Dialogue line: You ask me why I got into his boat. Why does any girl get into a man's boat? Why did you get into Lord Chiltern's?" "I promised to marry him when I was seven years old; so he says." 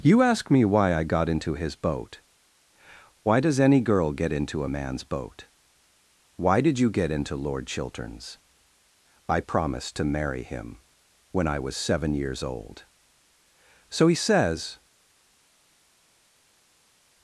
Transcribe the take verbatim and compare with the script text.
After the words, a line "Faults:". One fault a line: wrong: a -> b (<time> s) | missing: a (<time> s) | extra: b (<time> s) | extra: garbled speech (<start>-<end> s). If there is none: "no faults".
You ask me why I got into his boat. Why does any girl get into a man's boat? Why did you get into Lord Chiltern's?" "I promised to marry him when I was seven years old; so he says."
Faults:
no faults